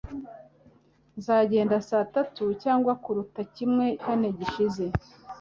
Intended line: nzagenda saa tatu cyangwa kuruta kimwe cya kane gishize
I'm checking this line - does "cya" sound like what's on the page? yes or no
no